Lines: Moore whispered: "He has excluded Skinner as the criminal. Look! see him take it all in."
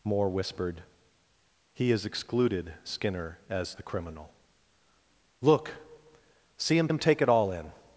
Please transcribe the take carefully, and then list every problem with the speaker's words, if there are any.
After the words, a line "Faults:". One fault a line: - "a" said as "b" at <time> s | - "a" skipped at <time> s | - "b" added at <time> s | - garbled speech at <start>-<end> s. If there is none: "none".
Moore whispered: "He has excluded Skinner as the criminal. Look! see him him take it all in."
Faults:
- "him" added at 6.9 s